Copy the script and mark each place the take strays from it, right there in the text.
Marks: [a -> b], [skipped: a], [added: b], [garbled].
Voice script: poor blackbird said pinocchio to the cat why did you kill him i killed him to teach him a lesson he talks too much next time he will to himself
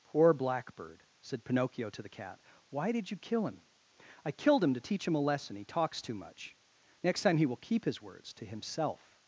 poor blackbird said pinocchio to the cat why did you kill him i killed him to teach him a lesson he talks too much next time he will [added: keep his words] to himself